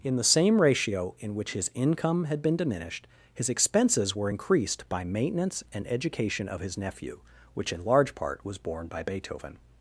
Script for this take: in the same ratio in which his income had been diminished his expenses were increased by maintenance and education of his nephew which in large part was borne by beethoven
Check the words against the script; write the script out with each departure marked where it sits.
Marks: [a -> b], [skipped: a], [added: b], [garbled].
in the same ratio in which his income had been diminished his expenses were increased by maintenance and education of his nephew which in large part was borne by beethoven